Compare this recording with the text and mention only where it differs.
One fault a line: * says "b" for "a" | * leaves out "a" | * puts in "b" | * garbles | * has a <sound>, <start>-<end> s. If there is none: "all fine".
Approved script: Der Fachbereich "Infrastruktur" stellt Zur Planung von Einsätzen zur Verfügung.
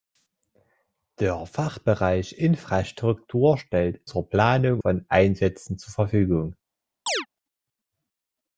* has a chirp, 7.1-7.3 s